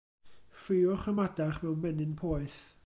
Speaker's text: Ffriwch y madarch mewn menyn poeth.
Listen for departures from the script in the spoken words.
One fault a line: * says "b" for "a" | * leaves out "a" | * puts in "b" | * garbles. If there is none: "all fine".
all fine